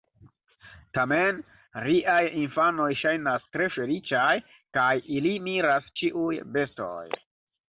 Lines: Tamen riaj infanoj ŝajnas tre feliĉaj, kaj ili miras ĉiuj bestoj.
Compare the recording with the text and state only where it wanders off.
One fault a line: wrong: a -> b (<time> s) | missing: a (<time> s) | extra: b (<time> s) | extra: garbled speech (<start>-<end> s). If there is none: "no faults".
no faults